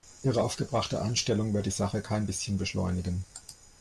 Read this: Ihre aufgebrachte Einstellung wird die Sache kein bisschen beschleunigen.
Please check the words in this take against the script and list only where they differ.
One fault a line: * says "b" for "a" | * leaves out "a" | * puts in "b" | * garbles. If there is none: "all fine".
all fine